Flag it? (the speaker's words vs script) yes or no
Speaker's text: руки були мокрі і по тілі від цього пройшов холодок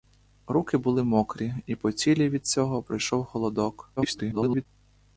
yes